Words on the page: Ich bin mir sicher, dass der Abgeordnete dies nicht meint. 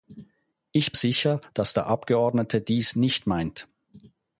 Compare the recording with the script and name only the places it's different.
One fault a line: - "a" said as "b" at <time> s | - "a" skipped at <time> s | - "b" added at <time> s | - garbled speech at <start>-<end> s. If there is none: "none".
- "bin mir" skipped at 0.9 s